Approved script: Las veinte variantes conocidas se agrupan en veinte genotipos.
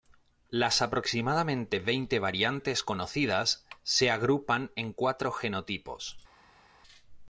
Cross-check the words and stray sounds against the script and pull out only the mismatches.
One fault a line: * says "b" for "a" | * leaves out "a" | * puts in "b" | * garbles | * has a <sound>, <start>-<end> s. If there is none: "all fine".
* puts in "aproximadamente"
* says "cuatro" for "veinte"